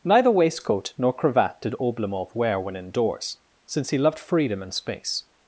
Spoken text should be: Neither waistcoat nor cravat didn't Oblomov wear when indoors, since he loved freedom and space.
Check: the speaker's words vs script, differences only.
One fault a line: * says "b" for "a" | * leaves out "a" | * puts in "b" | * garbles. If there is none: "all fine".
* says "did" for "didn't"